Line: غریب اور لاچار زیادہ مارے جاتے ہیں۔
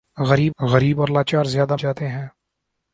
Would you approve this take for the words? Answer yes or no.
no